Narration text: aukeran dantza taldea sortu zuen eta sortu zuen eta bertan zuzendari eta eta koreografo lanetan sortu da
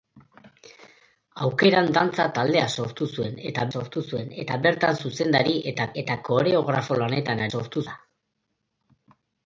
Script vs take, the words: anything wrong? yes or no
no